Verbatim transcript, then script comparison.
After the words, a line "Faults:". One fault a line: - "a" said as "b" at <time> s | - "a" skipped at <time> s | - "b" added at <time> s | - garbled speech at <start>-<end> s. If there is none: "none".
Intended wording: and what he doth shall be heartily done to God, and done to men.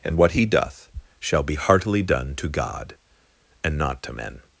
and what he doth shall be heartily done to God, and not to men.
Faults:
- "done" said as "not" at 3.8 s